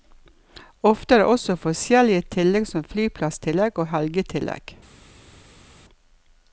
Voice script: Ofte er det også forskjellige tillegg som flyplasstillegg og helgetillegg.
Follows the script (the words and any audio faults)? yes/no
yes